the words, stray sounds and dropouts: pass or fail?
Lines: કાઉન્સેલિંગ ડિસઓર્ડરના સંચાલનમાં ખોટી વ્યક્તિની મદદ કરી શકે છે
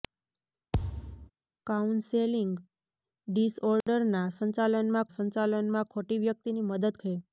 fail